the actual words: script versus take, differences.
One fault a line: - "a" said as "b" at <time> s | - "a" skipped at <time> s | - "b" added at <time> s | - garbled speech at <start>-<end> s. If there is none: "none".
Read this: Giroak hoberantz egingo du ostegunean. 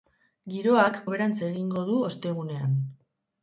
none